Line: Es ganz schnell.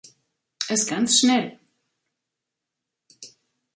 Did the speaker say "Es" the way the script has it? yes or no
yes